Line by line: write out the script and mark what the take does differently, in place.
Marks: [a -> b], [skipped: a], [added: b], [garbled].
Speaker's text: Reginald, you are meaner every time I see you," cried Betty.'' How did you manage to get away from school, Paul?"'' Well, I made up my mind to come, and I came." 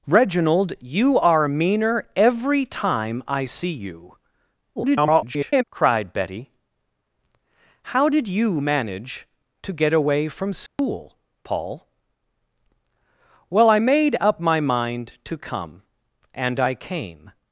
Reginald, you are meaner every time I see you," [garbled] cried Betty.'' How did you manage to get away from school, Paul?"'' Well, I made up my mind to come, and I came."